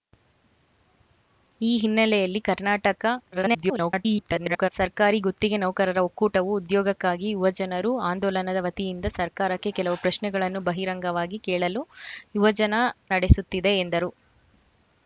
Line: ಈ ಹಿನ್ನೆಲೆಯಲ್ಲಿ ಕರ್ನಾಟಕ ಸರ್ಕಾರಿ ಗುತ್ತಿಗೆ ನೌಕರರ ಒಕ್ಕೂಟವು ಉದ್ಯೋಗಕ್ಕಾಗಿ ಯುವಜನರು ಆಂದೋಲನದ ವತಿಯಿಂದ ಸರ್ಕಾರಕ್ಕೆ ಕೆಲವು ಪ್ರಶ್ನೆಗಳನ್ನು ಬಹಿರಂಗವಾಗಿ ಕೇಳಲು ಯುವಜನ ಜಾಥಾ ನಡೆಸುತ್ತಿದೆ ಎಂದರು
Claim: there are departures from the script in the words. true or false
true